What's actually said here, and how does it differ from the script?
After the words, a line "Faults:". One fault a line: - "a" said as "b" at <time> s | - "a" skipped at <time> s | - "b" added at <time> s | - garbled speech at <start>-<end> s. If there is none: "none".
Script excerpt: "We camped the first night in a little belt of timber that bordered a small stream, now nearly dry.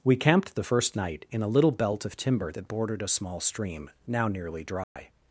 "We camped the first night in a little belt of timber that bordered a small stream, now nearly dry.
Faults:
none